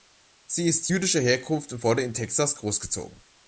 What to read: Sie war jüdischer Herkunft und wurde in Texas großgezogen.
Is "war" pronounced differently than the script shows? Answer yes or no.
yes